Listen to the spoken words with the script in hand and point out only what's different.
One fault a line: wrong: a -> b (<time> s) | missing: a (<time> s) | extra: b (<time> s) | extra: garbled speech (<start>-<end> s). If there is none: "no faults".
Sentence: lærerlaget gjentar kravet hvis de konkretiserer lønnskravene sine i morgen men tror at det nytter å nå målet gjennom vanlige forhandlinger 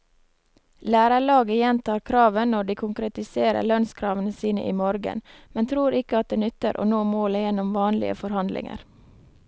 wrong: hvis -> når (2.5 s)
extra: ikke (6.0 s)